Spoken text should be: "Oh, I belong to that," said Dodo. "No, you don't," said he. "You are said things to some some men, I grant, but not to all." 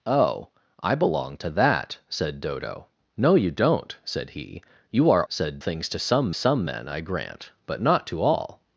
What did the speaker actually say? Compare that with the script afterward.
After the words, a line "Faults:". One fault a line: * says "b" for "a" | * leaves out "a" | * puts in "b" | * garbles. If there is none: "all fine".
"Oh, I belong to that," said Dodo. "No, you don't," said he. "You are said things to some some men, I grant, but not to all."
Faults:
all fine